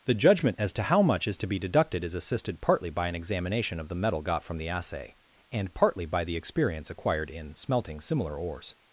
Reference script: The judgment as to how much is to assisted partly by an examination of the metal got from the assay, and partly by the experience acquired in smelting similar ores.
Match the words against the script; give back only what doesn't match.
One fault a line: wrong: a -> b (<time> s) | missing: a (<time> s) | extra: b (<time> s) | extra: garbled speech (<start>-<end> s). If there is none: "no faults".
extra: be deducted is (1.5 s)